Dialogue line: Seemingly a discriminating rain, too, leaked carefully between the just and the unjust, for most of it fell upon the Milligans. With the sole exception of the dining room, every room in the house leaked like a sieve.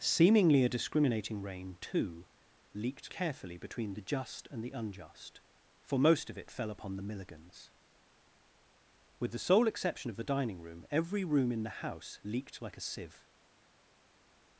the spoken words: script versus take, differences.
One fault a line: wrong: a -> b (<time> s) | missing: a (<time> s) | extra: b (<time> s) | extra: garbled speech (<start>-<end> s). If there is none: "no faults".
no faults